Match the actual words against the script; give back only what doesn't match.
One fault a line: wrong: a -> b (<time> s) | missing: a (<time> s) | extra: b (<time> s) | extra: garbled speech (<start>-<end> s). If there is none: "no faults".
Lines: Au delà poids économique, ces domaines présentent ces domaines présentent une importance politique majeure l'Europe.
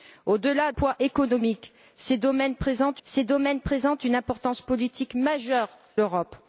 no faults